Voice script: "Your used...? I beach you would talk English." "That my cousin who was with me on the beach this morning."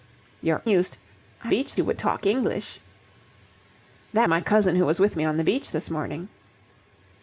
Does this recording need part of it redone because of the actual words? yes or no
no